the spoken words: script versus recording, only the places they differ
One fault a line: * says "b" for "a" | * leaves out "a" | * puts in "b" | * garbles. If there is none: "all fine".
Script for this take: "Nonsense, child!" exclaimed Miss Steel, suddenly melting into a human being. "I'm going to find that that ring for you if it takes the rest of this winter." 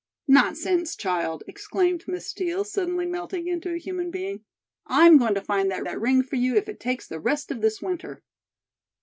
all fine